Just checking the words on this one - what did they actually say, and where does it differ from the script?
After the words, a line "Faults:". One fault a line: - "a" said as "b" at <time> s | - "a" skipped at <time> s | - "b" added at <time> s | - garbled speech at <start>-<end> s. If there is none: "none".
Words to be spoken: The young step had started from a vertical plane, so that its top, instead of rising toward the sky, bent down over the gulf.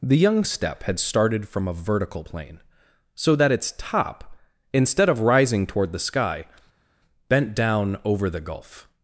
The young step had started from a vertical plane, so that its top, instead of rising toward the sky, bent down over the gulf.
Faults:
none